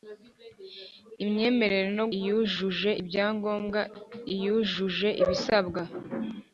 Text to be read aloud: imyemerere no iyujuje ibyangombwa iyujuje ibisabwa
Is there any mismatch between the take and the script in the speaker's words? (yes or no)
no